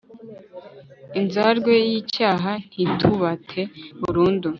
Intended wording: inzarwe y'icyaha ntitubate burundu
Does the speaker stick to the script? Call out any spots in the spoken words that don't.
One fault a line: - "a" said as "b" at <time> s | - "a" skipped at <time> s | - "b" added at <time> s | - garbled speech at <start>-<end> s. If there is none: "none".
none